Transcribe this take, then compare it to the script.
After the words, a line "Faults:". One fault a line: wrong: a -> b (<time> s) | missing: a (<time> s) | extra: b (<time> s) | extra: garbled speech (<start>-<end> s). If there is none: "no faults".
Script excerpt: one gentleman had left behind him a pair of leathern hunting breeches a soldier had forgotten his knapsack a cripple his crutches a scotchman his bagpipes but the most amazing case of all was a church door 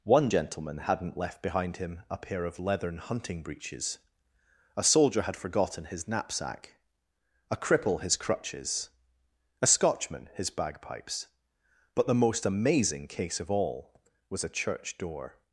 one gentleman hadn't left behind him a pair of leathern hunting breeches a soldier had forgotten his knapsack a cripple his crutches a scotchman his bagpipes but the most amazing case of all was a church door
Faults:
wrong: had -> hadn't (0.8 s)